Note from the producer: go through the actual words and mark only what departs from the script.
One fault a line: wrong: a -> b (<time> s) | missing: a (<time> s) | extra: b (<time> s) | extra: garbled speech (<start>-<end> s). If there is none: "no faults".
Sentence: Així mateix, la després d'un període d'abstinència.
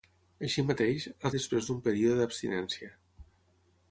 no faults